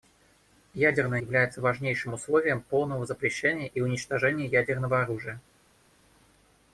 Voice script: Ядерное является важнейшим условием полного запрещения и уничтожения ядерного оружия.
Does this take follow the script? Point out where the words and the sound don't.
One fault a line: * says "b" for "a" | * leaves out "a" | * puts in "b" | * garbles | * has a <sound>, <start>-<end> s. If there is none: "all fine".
all fine